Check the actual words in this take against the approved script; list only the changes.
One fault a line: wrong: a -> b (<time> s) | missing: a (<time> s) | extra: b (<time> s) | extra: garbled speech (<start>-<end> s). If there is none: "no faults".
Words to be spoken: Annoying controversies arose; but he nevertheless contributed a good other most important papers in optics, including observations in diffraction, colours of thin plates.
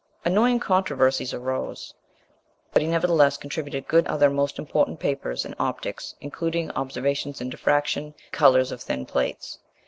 no faults